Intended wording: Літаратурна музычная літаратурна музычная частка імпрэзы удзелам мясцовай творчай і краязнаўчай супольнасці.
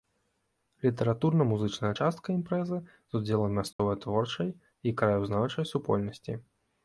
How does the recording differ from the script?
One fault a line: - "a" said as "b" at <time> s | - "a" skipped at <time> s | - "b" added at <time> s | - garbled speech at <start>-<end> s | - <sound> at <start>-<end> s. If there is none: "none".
- "літаратурна музычная" skipped at 1.9 s
- "з" added at 2.8 s
- dropout at 3.7-3.8 s